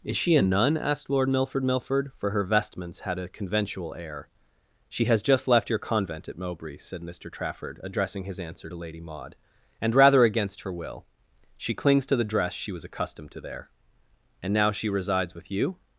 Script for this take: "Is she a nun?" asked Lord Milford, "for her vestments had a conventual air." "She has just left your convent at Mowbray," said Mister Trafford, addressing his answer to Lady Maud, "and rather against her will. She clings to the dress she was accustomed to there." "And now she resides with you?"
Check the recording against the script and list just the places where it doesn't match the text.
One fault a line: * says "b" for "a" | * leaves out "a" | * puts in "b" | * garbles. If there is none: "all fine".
* puts in "Milford"